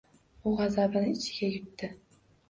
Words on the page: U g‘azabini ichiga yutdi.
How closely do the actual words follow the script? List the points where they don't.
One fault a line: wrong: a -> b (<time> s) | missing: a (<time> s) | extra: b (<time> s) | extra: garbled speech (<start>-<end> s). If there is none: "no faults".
no faults